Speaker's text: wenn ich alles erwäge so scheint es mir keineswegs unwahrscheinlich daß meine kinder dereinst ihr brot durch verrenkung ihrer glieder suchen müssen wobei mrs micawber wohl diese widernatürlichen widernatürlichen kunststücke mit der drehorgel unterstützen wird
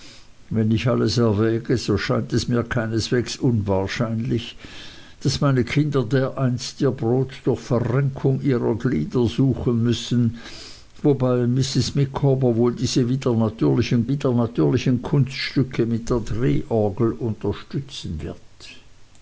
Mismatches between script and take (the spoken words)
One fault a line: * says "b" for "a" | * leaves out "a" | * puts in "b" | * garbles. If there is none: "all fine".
all fine